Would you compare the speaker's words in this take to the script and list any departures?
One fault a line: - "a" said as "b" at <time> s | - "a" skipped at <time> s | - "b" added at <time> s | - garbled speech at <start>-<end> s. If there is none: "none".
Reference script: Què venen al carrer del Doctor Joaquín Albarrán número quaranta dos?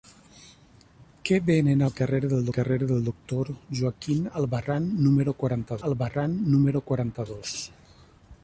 - "carrer del" added at 2.5 s
- "Albarrán número quaranta" added at 5.9 s